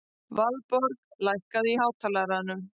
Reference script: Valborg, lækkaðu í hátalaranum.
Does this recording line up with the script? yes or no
yes